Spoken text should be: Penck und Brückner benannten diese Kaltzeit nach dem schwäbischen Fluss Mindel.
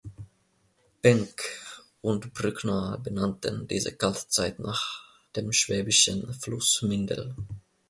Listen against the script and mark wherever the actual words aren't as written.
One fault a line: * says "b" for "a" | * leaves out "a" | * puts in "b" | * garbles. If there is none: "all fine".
all fine